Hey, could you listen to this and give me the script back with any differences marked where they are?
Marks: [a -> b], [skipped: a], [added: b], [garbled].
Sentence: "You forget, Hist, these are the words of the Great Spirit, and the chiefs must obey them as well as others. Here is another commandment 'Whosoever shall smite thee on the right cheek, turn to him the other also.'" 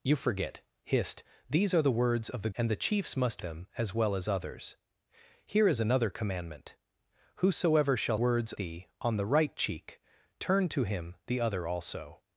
"You forget, Hist, these are the words of the [skipped: Great Spirit,] and the chiefs must [skipped: obey] them as well as others. Here is another commandment 'Whosoever shall [smite -> words] thee on the right cheek, turn to him the other also.'"